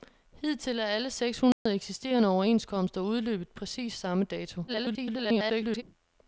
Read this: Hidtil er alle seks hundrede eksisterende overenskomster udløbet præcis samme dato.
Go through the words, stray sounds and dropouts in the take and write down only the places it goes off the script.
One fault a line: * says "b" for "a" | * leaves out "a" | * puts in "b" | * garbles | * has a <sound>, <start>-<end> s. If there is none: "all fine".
* has a dropout, 1.5-1.7 s
* garbles